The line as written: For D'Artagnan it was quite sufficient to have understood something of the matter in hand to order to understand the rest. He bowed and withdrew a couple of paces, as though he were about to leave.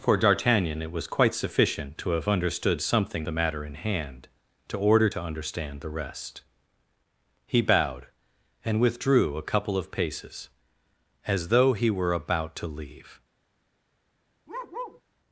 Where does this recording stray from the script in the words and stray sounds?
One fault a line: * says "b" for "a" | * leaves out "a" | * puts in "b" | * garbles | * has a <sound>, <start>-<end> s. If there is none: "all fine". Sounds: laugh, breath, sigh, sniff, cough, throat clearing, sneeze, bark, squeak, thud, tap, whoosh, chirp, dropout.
* leaves out "of"
* has a bark, 14.5-15.0 s